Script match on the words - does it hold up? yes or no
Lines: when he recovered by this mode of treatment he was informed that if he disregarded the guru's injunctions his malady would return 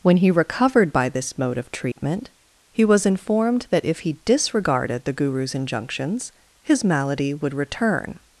yes